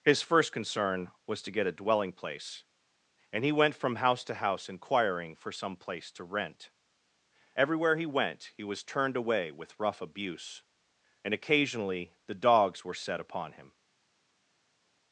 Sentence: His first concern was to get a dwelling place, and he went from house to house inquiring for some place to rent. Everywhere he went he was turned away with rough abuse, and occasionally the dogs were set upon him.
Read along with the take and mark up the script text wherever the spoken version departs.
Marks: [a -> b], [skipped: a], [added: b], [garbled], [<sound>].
His first concern was to get a dwelling place, and he went from house to house inquiring for some place to rent. Everywhere he went he was turned away with rough abuse, and occasionally the dogs were set upon him.